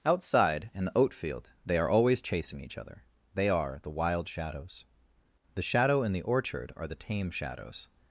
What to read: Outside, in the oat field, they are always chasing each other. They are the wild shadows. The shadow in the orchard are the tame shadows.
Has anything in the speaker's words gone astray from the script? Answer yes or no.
no